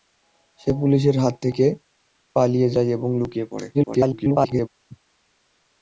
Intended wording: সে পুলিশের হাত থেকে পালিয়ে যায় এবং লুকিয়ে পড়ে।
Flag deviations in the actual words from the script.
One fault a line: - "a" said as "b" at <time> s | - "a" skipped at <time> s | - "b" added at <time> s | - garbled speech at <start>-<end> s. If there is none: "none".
- garbled speech at 3.7-4.7 s